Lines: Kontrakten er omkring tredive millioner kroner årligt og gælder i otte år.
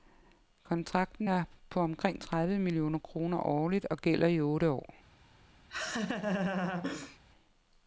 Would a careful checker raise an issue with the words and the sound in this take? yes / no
yes